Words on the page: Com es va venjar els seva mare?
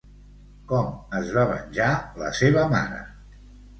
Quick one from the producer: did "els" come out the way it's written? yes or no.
no